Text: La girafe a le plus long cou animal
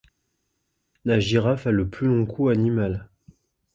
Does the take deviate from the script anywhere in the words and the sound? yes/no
no